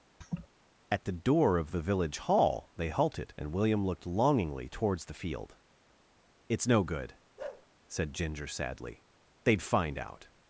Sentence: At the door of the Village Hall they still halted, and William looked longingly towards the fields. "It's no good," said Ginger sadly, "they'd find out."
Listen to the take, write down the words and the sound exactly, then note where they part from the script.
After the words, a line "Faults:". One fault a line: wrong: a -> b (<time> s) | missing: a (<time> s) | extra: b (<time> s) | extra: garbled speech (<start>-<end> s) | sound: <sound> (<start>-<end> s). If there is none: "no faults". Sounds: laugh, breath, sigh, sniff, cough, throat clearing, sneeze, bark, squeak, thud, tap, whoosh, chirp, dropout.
At the door of the Village Hall they halted, and William looked longingly towards the field. "It's no good," said Ginger sadly, "they'd find out."
Faults:
sound: laugh (0.2-0.5 s)
missing: still (2.9 s)
wrong: fields -> field (5.1 s)
sound: bark (7.4-7.7 s)